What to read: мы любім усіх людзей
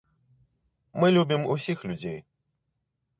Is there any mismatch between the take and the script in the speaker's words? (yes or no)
no